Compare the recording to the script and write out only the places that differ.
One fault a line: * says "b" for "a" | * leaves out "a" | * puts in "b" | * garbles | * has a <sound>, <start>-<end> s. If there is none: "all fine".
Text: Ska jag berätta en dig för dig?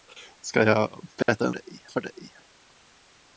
* has a dropout, 1.2-1.3 s